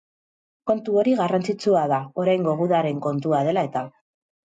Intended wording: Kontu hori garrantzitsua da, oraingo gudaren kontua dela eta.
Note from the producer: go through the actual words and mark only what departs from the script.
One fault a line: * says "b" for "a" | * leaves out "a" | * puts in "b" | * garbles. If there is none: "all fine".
all fine